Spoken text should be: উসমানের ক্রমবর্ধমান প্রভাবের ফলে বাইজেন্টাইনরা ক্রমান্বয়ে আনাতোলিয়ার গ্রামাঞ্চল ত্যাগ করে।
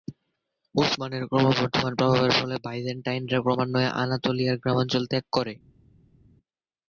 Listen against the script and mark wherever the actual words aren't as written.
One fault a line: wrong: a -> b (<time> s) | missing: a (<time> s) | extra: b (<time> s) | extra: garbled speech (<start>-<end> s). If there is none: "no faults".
no faults